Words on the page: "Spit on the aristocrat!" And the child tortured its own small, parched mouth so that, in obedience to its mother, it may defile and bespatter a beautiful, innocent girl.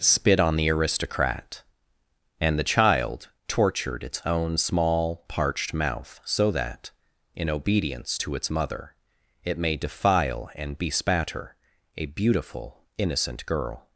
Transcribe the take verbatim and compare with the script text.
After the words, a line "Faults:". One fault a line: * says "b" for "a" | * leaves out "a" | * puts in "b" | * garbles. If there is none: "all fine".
"Spit on the aristocrat!" And the child tortured its own small, parched mouth so that, in obedience to its mother, it may defile and bespatter a beautiful, innocent girl.
Faults:
all fine